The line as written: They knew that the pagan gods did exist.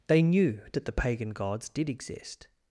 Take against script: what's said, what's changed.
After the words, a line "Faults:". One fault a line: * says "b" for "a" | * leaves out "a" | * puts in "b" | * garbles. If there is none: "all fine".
They knew that the pagan gods did exist.
Faults:
all fine